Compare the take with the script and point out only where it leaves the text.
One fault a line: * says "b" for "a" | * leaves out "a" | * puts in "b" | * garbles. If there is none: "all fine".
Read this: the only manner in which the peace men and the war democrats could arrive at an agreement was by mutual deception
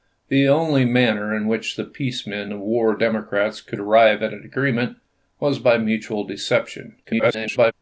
* leaves out "and"
* garbles